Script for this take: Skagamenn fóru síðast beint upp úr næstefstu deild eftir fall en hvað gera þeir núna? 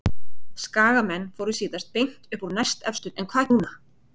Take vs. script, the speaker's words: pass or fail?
fail